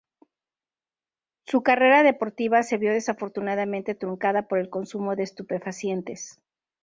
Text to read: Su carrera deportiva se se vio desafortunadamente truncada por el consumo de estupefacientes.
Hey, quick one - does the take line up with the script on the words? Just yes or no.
no